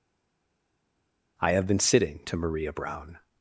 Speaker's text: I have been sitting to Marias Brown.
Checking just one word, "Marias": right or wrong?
wrong